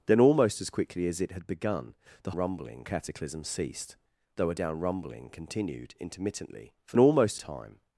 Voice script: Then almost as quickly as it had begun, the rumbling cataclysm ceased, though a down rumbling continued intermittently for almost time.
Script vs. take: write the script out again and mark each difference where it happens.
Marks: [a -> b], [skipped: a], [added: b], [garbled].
Then almost as quickly as it had begun, the rumbling cataclysm ceased, though a down rumbling continued intermittently for almost time.